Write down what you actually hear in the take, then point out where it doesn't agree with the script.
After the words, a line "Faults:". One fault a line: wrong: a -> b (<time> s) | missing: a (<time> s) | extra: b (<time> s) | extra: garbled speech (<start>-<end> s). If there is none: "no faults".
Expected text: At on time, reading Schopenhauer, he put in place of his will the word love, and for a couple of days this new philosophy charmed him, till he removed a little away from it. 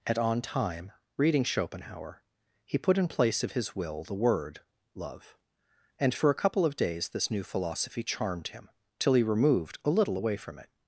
At on time, reading Schopenhauer, he put in place of his will the word love, and for a couple of days this new philosophy charmed him, till he removed a little away from it.
Faults:
no faults